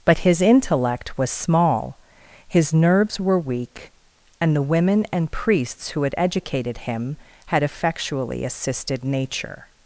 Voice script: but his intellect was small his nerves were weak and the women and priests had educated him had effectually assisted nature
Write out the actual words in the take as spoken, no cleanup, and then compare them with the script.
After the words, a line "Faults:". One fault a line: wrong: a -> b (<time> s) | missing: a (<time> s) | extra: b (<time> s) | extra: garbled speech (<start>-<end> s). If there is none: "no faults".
but his intellect was small his nerves were weak and the women and priests who had educated him had effectually assisted nature
Faults:
extra: who (5.9 s)